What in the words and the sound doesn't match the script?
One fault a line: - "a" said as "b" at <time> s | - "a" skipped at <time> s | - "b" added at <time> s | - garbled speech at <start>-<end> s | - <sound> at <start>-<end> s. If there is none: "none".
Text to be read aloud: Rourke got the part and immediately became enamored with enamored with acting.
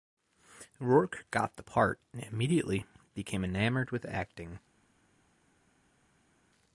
- "enamored with" skipped at 4.0 s